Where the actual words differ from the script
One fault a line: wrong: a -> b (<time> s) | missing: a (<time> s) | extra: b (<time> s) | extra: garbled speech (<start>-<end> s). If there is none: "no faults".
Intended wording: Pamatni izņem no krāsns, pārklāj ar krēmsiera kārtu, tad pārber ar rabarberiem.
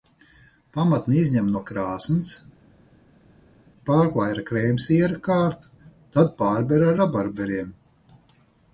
no faults